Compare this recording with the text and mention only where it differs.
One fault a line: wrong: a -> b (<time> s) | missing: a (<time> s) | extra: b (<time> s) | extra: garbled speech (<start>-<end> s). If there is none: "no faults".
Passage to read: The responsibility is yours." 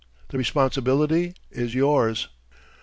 no faults